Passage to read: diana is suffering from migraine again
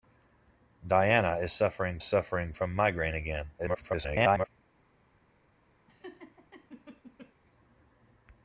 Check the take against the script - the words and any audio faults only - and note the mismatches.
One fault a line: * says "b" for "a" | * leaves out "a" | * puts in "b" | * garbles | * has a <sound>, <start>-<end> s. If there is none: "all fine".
* puts in "suffering"
* garbles
* has a laugh, 5.9-7.3 s